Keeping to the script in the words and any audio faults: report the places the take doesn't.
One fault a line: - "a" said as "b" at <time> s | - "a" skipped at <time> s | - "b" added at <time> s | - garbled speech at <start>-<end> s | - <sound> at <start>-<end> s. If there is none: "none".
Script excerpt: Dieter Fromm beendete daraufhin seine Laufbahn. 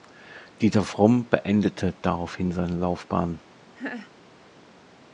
- laugh at 3.8-4.1 s